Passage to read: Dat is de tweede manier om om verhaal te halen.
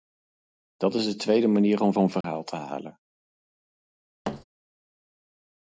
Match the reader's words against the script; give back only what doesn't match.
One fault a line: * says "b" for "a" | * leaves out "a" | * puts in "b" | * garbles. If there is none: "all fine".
all fine